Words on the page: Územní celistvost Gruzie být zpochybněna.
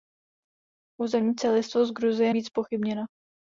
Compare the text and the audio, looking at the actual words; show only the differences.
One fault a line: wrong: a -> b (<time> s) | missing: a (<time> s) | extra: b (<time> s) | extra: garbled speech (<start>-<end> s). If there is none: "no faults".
no faults